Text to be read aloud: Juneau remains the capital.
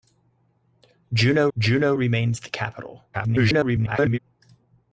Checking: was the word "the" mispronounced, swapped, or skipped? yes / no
no